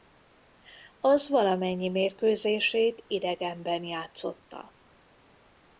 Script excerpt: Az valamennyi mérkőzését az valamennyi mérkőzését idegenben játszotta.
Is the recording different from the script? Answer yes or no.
yes